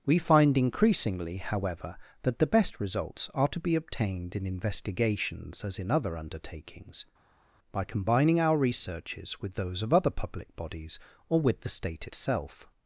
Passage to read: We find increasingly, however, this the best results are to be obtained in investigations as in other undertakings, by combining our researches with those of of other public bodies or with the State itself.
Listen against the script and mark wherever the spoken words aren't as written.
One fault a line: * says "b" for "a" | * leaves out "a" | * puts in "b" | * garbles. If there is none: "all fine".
* says "that" for "this"
* leaves out "of"